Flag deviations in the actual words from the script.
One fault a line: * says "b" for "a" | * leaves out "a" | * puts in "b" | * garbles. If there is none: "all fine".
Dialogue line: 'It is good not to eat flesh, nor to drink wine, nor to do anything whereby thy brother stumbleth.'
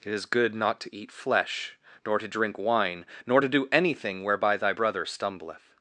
all fine